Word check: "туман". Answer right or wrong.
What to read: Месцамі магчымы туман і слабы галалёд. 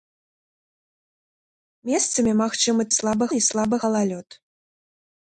wrong